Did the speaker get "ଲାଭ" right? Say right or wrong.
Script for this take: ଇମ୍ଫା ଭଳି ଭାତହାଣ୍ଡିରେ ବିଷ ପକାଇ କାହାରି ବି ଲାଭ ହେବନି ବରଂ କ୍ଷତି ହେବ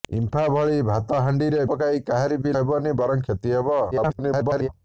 wrong